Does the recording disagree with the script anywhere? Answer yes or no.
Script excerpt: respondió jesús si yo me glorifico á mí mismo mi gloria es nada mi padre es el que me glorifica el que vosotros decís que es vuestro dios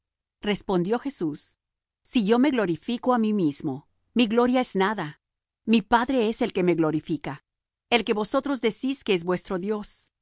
no